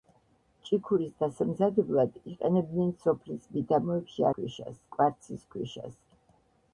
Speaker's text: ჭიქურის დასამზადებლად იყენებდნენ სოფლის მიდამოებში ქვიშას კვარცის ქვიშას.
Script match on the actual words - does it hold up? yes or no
yes